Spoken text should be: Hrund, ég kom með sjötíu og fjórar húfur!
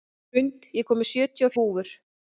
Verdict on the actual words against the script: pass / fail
fail